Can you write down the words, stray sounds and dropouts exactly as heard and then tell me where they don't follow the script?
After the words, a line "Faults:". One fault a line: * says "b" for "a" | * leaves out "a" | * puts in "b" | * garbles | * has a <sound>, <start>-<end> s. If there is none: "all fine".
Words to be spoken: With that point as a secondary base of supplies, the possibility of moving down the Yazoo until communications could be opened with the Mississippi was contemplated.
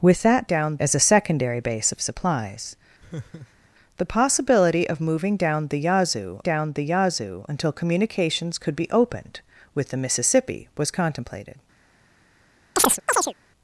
With that down as a secondary base of supplies, the possibility of moving down the Yazoo down the Yazoo until communications could be opened with the Mississippi was contemplated.
Faults:
* says "down" for "point"
* has a laugh, 3.0-3.7 s
* puts in "down the Yazoo"
* has a chirp, 12.8-13.3 s